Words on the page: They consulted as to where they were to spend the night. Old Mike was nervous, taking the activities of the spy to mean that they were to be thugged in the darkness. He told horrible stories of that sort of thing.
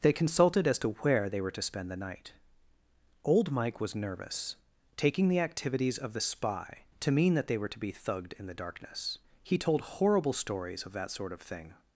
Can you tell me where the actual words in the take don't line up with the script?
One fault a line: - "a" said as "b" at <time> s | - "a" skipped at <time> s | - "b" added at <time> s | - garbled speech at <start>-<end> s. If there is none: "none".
none